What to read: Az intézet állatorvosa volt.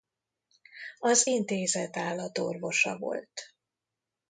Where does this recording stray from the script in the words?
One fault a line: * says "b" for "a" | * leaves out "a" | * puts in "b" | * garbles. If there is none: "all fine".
all fine